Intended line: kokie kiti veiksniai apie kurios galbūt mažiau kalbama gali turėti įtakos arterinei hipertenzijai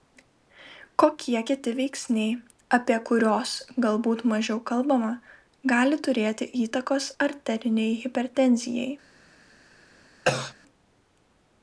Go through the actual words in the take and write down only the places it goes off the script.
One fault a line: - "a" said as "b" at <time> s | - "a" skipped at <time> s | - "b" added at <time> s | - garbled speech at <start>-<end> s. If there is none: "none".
none